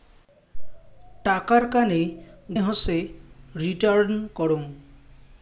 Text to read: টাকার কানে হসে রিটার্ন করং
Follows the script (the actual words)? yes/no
yes